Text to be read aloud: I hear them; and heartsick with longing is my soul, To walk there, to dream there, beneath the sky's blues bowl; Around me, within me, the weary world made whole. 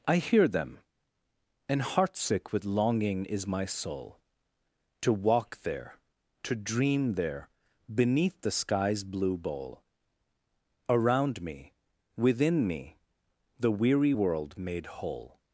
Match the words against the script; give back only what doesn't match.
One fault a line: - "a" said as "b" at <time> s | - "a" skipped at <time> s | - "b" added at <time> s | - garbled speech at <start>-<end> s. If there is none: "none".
- "blues" said as "blue" at 9.0 s